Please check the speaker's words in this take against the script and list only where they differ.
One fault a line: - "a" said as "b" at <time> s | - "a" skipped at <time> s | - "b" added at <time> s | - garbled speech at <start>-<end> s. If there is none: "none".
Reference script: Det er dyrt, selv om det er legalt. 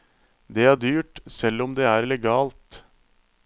none